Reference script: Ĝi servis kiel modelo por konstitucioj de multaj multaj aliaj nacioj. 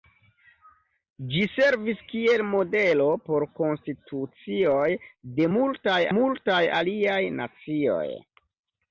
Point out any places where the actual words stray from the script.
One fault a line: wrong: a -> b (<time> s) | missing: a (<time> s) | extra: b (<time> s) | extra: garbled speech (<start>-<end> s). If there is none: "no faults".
no faults